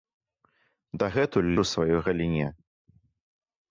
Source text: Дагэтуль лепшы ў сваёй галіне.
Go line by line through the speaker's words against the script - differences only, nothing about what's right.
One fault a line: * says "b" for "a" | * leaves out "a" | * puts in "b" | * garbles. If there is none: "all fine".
* leaves out "лепшы"